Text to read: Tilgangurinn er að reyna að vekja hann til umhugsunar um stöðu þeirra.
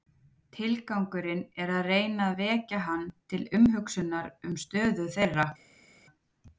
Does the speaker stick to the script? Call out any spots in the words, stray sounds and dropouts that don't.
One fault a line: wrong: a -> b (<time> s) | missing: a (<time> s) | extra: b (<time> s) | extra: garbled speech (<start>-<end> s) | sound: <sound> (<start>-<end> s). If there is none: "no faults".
no faults